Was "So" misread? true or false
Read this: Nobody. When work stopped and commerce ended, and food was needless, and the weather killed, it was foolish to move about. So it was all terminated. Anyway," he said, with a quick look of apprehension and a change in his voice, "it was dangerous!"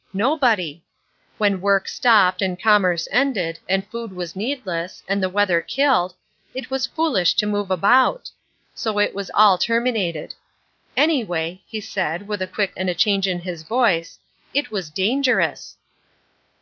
false